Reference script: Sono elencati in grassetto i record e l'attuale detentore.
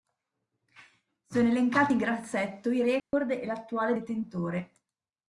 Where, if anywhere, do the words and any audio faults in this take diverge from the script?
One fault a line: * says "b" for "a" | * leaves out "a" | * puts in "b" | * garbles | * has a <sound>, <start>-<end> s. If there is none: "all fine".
* has a dropout, 3.0-3.1 s